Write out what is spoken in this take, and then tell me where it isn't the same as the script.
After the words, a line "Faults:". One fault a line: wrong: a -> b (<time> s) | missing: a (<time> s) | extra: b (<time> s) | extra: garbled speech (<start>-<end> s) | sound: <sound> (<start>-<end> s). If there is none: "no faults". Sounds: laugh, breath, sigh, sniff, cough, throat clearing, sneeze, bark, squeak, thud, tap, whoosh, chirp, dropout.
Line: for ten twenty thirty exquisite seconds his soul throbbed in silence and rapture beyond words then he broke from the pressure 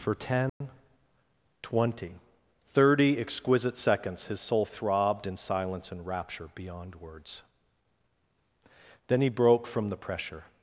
for ten twenty thirty exquisite seconds his soul throbbed in silence and rapture beyond words then he broke from the pressure
Faults:
sound: dropout (0.5-0.6 s)